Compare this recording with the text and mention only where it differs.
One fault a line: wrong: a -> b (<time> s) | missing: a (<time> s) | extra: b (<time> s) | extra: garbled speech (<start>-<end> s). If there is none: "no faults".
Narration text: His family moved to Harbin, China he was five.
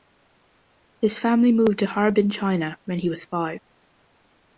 extra: when (2.9 s)